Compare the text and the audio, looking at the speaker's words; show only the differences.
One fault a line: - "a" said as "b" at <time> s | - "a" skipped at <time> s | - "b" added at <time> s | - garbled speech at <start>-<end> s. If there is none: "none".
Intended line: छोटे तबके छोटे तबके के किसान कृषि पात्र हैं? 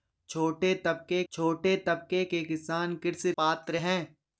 none